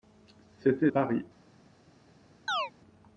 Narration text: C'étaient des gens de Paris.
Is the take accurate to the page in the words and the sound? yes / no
no